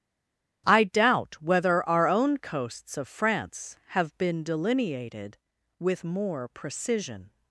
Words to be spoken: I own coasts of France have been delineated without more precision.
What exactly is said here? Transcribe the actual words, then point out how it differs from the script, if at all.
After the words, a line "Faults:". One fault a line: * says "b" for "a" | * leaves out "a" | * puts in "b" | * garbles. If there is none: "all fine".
I doubt whether our own coasts of France have been delineated with more precision.
Faults:
* puts in "doubt whether our"
* says "with" for "without"